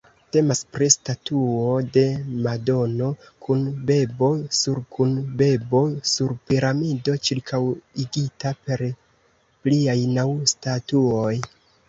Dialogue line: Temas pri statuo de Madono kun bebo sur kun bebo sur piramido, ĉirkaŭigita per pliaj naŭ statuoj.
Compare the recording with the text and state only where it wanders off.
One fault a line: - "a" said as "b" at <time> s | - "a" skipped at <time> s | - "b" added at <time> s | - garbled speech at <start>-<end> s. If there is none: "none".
none